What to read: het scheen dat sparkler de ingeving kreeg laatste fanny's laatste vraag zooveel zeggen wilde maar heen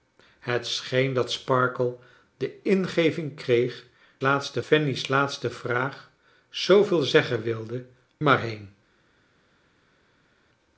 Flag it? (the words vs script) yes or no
no